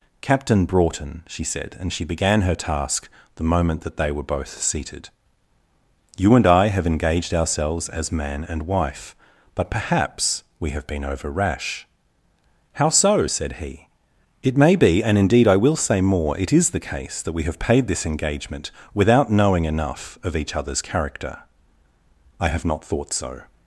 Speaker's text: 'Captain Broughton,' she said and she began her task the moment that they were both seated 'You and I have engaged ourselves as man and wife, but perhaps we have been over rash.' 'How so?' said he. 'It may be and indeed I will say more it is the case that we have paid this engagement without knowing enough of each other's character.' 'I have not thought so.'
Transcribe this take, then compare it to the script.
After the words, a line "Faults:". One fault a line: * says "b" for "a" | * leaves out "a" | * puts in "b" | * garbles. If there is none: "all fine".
'Captain Broughton,' she said and she began her task the moment that they were both seated 'You and I have engaged ourselves as man and wife, but perhaps we have been over rash.' 'How so?' said he. 'It may be and indeed I will say more it is the case that we have paid this engagement without knowing enough of each other's character.' 'I have not thought so.'
Faults:
all fine